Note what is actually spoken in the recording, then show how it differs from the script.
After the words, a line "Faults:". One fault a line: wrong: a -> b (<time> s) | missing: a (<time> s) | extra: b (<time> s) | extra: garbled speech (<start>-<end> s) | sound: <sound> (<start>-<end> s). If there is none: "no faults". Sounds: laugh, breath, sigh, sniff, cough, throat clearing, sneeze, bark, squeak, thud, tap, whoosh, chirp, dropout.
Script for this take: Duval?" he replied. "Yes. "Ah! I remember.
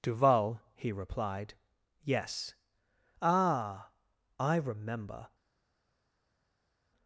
Duval?" he replied. "Yes. "Ah! I remember.
Faults:
no faults